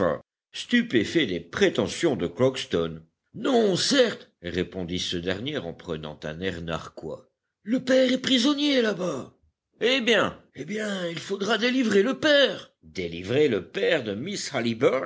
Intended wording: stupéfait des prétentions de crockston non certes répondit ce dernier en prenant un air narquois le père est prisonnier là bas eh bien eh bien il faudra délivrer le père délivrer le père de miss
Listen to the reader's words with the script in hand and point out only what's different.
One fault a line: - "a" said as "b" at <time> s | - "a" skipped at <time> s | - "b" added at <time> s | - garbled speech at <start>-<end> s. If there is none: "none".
none